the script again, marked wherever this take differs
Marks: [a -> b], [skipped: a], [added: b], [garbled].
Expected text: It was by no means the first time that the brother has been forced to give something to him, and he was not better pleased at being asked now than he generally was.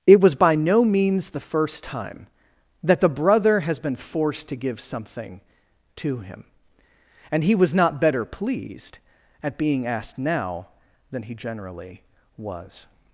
It was by no means the first time that the brother has been forced to give something to him, and he was not better pleased at being asked now than he generally was.